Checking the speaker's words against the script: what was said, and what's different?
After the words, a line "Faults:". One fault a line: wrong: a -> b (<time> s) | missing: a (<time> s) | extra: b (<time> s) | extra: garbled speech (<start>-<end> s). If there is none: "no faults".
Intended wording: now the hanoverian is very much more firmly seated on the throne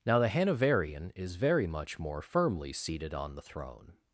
now the hanoverian is very much more firmly seated on the throne
Faults:
no faults